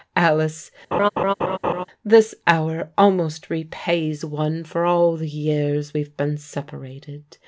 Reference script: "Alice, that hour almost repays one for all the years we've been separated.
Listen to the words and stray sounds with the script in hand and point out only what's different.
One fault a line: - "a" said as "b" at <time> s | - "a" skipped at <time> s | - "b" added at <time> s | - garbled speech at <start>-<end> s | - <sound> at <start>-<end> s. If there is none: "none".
- laugh at 0.9-1.9 s
- "that" said as "this" at 2.0 s